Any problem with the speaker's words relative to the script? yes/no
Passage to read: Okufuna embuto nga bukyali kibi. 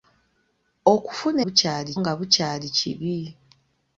yes